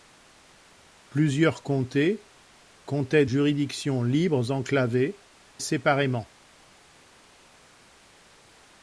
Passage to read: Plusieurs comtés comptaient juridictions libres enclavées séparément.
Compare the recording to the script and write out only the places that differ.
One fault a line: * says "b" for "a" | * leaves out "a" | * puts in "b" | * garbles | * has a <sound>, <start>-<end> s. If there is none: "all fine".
all fine